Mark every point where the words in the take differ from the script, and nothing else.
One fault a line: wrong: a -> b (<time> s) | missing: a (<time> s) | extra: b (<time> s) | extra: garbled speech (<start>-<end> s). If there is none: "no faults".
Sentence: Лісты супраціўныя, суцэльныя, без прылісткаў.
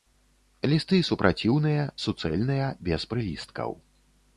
no faults